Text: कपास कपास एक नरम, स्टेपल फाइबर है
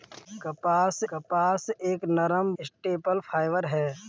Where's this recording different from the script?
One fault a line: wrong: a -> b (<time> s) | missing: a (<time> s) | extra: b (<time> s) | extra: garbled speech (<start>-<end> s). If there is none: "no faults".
no faults